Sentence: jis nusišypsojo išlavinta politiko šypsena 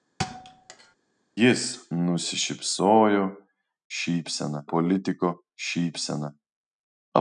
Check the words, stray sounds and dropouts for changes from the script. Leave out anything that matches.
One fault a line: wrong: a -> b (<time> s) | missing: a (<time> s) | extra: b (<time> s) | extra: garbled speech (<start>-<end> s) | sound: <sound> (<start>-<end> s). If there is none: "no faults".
sound: thud (0.2-1.0 s)
wrong: išlavinta -> šypsena (4.0 s)